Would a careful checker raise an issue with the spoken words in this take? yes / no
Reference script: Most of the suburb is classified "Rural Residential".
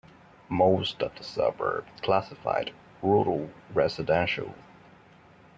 yes